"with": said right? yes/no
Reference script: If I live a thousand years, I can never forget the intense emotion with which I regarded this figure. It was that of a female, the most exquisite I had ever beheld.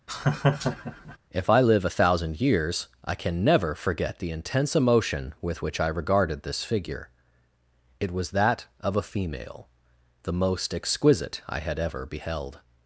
yes